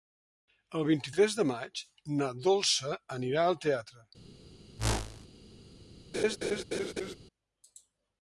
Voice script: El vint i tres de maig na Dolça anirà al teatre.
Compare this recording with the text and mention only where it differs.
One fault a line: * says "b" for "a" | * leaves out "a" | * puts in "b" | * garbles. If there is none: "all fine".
all fine